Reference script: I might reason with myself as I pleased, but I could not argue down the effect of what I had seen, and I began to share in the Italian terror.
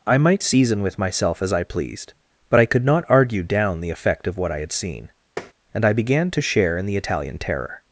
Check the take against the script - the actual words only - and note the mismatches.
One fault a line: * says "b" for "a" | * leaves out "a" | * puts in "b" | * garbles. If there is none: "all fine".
* says "season" for "reason"